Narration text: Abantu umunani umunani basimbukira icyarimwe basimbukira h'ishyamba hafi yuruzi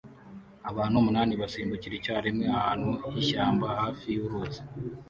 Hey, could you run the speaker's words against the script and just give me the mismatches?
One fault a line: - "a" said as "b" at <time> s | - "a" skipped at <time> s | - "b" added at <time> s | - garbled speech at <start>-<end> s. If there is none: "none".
- "umunani" skipped at 1.3 s
- "basimbukira" said as "ahantu" at 2.6 s